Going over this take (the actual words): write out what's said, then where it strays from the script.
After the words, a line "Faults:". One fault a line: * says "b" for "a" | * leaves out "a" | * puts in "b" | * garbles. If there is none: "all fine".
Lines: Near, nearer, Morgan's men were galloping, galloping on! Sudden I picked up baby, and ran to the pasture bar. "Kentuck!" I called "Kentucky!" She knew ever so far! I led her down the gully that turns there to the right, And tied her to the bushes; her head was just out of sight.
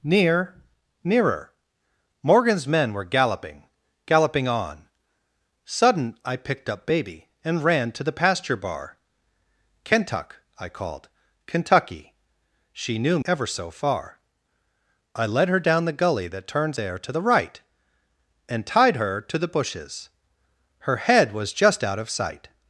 Near, nearer, Morgan's men were galloping, galloping on! Sudden I picked up baby, and ran to the pasture bar. "Kentuck!" I called "Kentucky!" She knew ever so far! I led her down the gully that turns there to the right, And tied her to the bushes; her head was just out of sight.
Faults:
all fine